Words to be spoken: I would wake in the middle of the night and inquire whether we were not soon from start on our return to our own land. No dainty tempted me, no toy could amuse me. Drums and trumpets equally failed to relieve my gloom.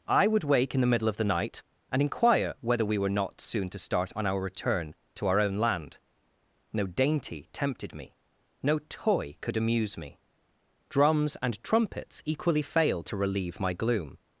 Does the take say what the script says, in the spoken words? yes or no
no